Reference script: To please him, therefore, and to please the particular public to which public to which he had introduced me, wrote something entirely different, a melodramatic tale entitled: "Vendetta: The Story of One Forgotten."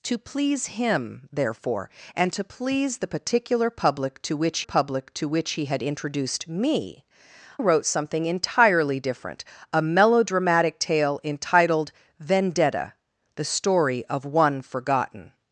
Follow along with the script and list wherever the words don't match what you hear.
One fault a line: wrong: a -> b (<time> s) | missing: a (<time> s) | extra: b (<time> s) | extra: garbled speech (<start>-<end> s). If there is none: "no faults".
no faults